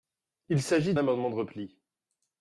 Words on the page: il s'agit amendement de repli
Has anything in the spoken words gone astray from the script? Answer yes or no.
no